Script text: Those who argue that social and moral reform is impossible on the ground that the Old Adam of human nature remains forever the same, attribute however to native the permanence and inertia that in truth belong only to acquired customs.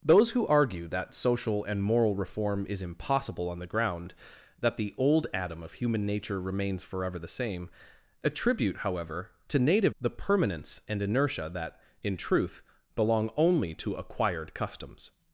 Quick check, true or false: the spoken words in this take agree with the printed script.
true